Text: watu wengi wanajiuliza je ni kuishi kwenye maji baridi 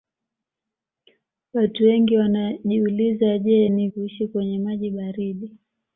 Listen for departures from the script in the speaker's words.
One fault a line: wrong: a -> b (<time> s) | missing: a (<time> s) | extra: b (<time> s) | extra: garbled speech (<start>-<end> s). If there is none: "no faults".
no faults